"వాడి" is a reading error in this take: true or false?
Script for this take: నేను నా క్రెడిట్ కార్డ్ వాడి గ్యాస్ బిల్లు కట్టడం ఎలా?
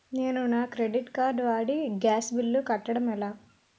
false